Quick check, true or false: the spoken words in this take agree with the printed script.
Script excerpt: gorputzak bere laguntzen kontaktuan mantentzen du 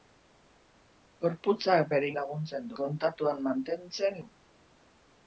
true